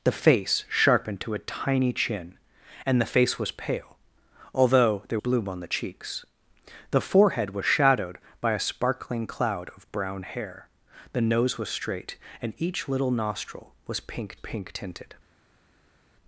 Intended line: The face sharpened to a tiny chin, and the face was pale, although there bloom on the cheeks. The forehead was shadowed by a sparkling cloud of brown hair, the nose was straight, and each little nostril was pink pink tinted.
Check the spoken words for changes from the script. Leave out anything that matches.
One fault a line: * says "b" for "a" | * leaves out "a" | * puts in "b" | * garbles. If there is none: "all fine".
all fine